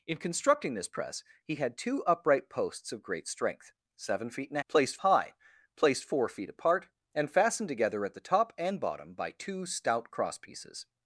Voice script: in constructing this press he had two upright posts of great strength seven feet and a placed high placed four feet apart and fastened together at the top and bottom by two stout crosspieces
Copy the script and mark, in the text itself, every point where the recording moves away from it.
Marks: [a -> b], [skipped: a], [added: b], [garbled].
in constructing this press he had two upright posts of great strength seven feet and a placed high placed four feet apart and fastened together at the top and bottom by two stout crosspieces